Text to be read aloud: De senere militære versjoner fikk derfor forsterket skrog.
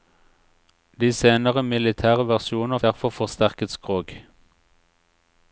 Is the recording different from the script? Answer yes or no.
yes